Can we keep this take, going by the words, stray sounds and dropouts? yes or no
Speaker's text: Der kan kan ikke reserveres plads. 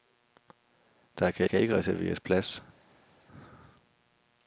yes